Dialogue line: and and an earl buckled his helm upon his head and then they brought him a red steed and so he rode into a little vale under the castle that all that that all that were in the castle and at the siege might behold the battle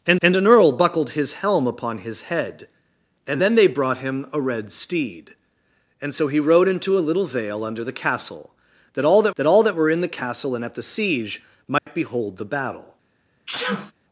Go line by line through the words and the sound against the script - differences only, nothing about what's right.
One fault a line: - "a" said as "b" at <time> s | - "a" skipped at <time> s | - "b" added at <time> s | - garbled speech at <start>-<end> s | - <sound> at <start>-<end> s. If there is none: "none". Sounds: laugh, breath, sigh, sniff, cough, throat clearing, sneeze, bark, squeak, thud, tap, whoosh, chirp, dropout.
- dropout at 11.8-11.9 s
- sneeze at 13.5-13.9 s